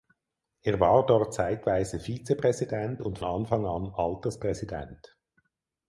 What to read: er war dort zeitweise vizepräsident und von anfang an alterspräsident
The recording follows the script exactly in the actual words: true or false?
false